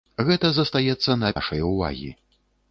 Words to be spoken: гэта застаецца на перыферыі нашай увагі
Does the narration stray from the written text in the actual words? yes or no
yes